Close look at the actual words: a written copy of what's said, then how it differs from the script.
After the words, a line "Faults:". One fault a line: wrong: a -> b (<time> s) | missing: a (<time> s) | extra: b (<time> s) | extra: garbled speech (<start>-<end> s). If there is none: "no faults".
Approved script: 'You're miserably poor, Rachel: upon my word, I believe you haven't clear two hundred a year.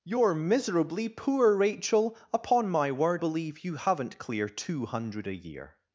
'You're miserably poor, Rachel: upon my word, believe you haven't clear two hundred a year.
Faults:
missing: I (3.2 s)